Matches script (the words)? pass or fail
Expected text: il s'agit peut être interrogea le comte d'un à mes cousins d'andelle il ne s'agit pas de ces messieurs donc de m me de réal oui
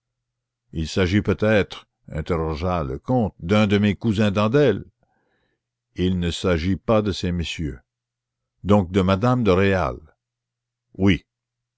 fail